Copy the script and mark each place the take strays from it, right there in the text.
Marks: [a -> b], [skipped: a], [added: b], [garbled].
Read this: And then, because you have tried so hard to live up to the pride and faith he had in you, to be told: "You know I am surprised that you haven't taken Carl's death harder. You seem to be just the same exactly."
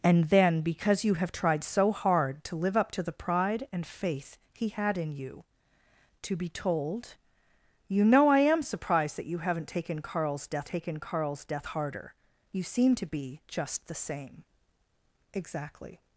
And then, because you have tried so hard to live up to the pride and faith he had in you, to be told: "You know I am surprised that you haven't taken Carl's death [added: taken Carl's death] harder. You seem to be just the same exactly."